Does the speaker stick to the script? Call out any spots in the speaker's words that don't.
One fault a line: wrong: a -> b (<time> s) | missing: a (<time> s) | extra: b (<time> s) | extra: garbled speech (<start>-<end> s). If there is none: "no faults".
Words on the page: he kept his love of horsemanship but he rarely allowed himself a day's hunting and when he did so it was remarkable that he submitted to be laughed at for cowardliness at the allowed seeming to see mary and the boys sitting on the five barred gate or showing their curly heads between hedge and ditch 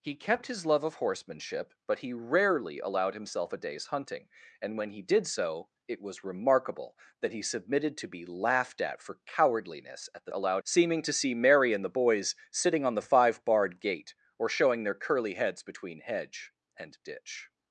no faults